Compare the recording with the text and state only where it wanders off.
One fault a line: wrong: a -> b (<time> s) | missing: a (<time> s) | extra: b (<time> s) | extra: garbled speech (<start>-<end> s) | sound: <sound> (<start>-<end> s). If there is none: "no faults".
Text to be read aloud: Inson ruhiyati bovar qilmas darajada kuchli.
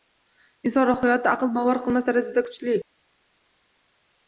extra: aql (1.3 s)